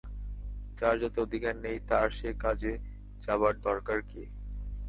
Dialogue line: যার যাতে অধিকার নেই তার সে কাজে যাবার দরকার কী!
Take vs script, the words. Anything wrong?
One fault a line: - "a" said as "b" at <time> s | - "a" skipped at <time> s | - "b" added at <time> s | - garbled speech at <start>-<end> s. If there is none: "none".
none